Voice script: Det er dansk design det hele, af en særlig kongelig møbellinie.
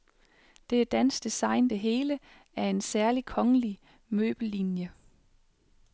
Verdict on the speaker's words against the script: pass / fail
pass